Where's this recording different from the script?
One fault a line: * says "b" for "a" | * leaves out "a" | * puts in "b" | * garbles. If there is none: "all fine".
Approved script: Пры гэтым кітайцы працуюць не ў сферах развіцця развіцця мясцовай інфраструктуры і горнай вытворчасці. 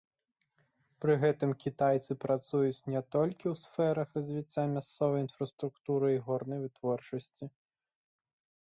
* puts in "толькі"
* leaves out "развіцця"